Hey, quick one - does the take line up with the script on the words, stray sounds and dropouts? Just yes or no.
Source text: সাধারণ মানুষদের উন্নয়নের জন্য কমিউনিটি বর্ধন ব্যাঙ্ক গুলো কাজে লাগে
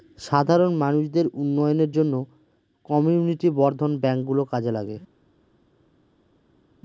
yes